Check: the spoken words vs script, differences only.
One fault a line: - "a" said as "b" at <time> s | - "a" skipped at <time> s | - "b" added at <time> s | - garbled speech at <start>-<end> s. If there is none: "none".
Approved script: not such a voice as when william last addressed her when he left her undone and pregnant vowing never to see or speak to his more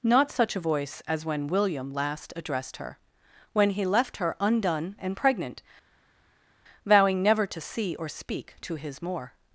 none